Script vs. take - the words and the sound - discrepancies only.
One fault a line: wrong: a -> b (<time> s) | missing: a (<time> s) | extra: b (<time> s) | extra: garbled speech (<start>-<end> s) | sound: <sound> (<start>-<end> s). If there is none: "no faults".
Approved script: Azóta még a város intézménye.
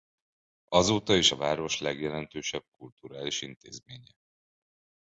wrong: még -> is (1.1 s)
extra: legjelentősebb kulturális (1.8 s)